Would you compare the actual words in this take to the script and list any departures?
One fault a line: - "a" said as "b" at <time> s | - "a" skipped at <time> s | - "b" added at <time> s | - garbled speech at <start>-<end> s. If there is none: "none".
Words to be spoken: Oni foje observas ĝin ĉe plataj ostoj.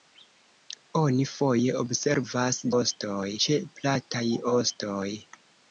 - "ĝin" said as "ostoj" at 2.8 s